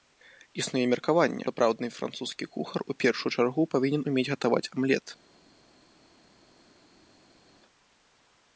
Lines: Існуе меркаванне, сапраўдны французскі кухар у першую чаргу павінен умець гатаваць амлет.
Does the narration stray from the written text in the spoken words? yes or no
no